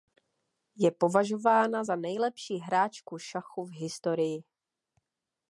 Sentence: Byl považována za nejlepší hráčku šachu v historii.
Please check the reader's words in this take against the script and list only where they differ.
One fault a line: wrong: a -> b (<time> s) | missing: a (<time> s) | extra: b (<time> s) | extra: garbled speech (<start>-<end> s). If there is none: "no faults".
wrong: Byl -> Je (0.8 s)